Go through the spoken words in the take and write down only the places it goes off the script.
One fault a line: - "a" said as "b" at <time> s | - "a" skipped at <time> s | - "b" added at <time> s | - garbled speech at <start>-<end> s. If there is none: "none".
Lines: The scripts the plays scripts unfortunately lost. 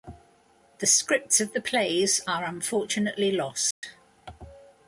- "of" added at 1.4 s
- "scripts" said as "are" at 2.3 s